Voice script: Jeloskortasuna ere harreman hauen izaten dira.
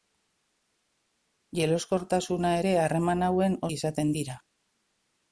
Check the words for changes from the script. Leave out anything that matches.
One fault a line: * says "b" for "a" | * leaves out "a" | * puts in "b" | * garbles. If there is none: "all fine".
all fine